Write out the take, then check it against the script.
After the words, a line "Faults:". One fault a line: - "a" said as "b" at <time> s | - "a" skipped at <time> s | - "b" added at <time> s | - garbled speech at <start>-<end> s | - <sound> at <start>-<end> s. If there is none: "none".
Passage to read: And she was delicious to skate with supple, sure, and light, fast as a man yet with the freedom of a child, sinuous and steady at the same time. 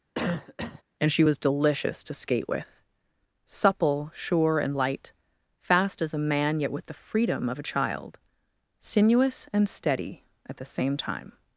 And she was delicious to skate with supple, sure, and light, fast as a man yet with the freedom of a child, sinuous and steady at the same time.
Faults:
- cough at 0.1-0.8 s